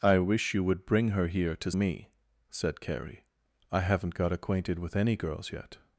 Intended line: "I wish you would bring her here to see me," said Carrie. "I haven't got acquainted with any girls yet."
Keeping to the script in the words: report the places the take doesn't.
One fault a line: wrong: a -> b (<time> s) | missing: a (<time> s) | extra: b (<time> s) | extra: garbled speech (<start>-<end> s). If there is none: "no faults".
missing: see (1.7 s)